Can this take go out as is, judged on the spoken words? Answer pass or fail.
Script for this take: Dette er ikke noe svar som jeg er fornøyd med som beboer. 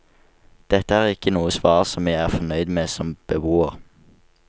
pass